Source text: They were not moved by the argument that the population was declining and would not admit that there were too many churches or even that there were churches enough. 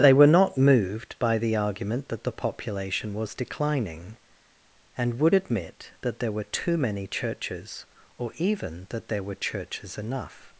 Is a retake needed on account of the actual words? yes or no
yes